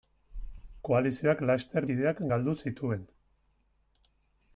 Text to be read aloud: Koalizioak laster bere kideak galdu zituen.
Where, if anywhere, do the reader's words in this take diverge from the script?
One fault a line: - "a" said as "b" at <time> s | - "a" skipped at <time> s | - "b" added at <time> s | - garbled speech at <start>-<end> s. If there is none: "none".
- "bere" skipped at 1.9 s